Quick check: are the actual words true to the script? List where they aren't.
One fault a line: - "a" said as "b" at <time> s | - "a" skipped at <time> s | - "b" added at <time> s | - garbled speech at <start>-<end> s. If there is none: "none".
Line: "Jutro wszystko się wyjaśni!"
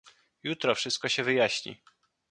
none